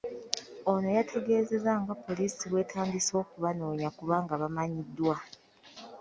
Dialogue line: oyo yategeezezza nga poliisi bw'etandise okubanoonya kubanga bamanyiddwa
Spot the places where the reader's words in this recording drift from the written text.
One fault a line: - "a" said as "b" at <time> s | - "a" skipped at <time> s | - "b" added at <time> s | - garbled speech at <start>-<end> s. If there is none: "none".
- "oyo" said as "ono" at 0.7 s